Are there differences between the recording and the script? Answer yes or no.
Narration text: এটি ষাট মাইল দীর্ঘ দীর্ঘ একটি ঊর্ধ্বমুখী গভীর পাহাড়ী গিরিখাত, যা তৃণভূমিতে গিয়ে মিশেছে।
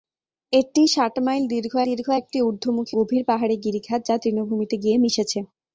no